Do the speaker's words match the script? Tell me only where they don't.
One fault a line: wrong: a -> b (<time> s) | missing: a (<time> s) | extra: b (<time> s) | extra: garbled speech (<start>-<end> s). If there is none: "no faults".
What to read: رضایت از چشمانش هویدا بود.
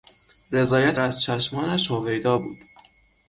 no faults